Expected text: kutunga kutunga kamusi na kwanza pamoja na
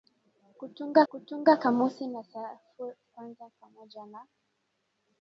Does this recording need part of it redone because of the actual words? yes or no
no